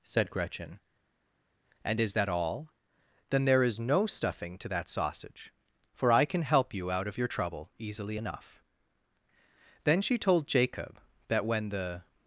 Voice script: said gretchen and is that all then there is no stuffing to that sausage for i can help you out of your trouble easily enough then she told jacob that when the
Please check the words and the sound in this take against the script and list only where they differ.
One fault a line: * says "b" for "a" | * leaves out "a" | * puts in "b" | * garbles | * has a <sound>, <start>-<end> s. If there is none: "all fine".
all fine